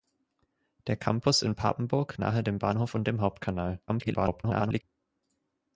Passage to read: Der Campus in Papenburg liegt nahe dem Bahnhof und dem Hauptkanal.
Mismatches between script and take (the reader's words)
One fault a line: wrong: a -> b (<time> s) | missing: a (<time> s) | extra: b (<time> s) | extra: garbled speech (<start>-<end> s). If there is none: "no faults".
missing: liegt (2.2 s)
extra: garbled speech (3.9-4.8 s)